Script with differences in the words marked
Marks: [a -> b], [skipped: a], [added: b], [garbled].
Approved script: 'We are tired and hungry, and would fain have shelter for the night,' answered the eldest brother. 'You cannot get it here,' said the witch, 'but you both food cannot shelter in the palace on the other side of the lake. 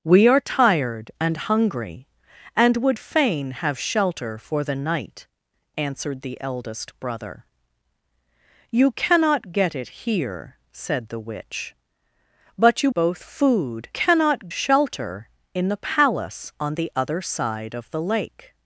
'We are tired and hungry, and would fain have shelter for the night,' answered the eldest brother. 'You cannot get it here,' said the witch, 'but you both food cannot shelter in the palace on the other side of the lake.